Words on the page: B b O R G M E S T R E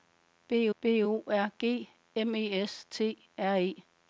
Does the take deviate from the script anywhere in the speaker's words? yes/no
no